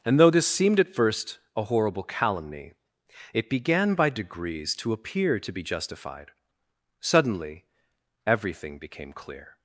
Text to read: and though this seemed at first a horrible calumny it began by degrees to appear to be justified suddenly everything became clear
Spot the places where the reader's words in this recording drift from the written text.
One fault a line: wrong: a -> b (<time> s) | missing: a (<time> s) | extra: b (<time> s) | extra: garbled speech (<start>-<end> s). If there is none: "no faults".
no faults